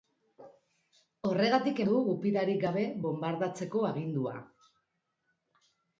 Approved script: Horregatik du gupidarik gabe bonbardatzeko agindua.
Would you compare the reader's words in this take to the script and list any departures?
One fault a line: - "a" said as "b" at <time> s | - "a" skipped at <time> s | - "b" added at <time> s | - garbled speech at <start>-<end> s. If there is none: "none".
none